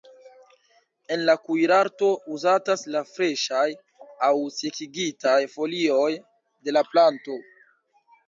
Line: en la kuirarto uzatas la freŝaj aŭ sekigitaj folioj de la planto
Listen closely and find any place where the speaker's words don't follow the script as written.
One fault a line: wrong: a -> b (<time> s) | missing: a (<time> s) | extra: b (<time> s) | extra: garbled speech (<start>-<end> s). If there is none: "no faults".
no faults